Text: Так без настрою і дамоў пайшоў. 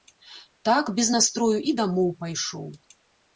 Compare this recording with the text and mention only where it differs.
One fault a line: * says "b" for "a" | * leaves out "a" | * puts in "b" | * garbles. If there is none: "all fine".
all fine